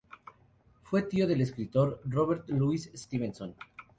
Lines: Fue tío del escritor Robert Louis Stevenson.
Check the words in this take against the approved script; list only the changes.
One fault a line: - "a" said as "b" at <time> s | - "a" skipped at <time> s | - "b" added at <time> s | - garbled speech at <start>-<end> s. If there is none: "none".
none